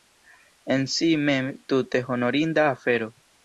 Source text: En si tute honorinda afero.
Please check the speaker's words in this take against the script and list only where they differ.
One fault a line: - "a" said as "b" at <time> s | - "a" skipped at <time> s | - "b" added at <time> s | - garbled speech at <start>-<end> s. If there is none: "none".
- "mem" added at 1.3 s